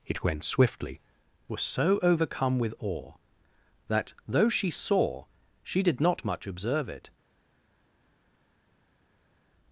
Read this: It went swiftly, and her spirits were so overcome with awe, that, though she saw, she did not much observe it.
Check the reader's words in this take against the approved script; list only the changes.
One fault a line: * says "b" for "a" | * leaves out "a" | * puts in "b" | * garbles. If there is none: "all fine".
* leaves out "and her spirits"